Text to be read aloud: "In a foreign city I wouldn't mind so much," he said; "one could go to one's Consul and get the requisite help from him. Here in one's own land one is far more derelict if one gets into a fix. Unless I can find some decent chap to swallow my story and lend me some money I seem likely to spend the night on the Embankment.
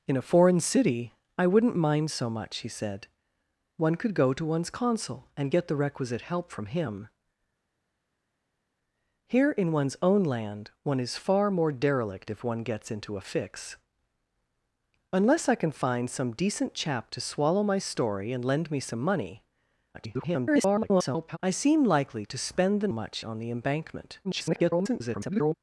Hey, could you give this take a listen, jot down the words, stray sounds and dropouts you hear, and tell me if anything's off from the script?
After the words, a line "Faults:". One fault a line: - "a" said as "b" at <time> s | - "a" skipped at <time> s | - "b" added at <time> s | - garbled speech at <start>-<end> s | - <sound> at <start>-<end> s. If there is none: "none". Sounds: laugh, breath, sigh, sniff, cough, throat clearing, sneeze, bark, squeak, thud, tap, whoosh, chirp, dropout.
"In a foreign city I wouldn't mind so much," he said; "one could go to one's Consul and get the requisite help from him. Here in one's own land one is far more derelict if one gets into a fix. Unless I can find some decent chap to swallow my story and lend me some money [garbled] I seem likely to spend the much on the Embankment. [garbled]
Faults:
- garbled speech at 19.9-21.4 s
- "night" said as "much" at 22.9 s
- garbled speech at 24.2-25.5 s